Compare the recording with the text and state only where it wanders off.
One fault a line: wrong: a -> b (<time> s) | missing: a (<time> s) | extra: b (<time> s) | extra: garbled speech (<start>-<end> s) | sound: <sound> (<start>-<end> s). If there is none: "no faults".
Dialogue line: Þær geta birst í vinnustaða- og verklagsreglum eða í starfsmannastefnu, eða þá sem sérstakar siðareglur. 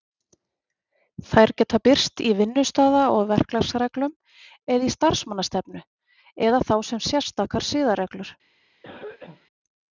sound: cough (8.8-9.5 s)